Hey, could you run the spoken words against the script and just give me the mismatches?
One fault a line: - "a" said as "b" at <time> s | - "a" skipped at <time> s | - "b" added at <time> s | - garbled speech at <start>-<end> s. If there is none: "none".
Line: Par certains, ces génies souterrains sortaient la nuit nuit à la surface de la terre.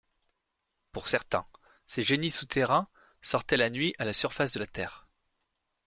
- "Par" said as "Pour" at 0.9 s
- "nuit" skipped at 3.9 s